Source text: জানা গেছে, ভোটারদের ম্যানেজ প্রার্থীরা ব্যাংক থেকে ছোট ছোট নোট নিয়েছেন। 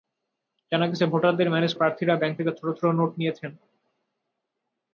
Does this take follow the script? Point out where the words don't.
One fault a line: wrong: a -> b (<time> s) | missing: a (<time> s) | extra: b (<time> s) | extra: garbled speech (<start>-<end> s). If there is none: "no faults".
no faults